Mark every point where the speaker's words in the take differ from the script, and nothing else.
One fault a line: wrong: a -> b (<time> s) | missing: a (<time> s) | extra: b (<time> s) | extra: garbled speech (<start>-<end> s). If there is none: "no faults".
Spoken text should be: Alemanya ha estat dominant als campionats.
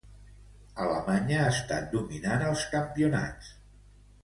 no faults